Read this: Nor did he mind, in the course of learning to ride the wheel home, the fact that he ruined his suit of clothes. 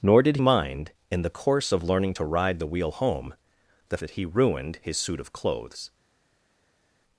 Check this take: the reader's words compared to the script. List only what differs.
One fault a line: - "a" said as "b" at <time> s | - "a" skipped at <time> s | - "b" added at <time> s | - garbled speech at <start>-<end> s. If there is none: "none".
- "he" skipped at 0.4 s
- "fact" skipped at 4.0 s